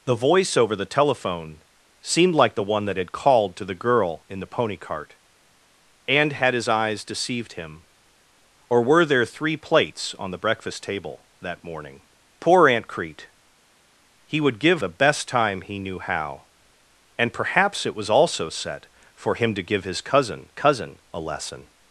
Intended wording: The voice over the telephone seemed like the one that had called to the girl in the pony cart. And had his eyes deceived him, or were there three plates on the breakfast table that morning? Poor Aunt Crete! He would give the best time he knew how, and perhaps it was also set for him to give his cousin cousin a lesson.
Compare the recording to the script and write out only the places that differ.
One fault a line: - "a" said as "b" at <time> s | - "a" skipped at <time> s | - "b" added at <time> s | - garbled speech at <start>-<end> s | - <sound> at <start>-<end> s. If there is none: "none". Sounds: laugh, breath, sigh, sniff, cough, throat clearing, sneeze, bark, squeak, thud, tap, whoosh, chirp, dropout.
none